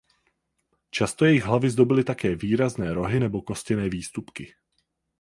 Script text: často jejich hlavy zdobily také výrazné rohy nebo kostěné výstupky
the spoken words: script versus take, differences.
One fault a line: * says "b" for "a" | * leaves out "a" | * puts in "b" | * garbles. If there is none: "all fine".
all fine